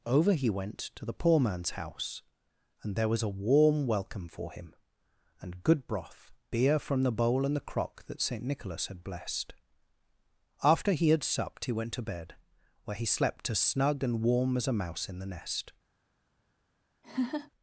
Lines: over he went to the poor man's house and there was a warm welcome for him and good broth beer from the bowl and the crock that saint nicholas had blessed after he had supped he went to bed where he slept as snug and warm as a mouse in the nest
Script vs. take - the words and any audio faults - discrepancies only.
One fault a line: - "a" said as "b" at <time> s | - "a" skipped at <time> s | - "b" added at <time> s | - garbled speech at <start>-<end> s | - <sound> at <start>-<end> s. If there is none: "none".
- laugh at 17.0-17.5 s